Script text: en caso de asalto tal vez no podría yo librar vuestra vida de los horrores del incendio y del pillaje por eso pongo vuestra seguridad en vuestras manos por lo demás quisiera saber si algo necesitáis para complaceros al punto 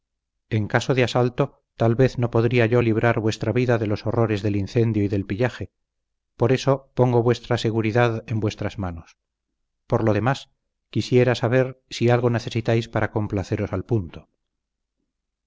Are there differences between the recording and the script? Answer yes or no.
no